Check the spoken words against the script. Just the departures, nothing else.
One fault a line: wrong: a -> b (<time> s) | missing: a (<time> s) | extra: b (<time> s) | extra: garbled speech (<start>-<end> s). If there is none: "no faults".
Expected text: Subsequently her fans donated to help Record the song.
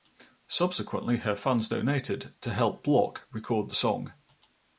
extra: Block (2.8 s)